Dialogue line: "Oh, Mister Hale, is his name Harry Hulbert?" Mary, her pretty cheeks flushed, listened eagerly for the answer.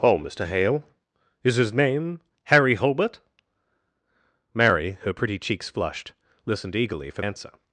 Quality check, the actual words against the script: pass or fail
fail